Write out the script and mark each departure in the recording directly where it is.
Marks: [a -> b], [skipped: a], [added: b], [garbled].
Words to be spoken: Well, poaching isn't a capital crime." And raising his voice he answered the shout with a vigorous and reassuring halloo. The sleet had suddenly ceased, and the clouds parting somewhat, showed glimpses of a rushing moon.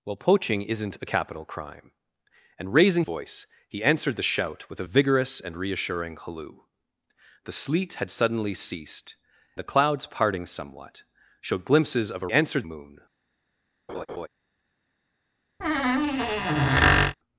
Well, poaching isn't a capital crime." And raising [skipped: his] voice he answered the shout with a vigorous and reassuring halloo. The sleet had suddenly ceased, [skipped: and] the clouds parting somewhat, showed glimpses of a [rushing -> answered] moon.